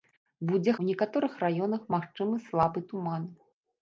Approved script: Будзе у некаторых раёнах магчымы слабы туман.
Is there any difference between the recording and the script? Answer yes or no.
no